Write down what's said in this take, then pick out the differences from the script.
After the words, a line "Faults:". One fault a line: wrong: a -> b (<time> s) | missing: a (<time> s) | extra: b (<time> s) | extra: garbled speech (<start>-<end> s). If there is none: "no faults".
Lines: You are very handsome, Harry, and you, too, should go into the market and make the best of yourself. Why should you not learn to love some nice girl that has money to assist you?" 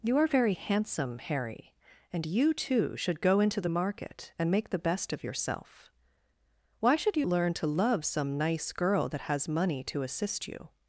You are very handsome, Harry, and you, too, should go into the market and make the best of yourself. Why should you learn to love some nice girl that has money to assist you?"
Faults:
missing: not (7.3 s)